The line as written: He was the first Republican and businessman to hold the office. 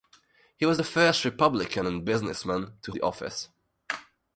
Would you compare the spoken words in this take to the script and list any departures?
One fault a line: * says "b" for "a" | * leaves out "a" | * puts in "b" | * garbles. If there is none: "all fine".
* leaves out "hold"